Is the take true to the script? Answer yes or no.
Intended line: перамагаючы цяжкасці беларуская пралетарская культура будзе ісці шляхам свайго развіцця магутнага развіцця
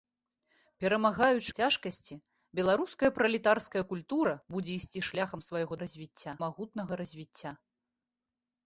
yes